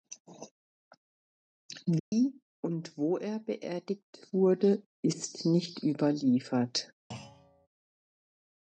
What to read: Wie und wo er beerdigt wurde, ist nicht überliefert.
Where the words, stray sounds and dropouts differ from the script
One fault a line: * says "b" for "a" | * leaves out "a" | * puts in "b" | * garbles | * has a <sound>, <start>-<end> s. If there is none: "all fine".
* has a dropout, 2.0-2.1 s
* has a thud, 7.1-7.7 s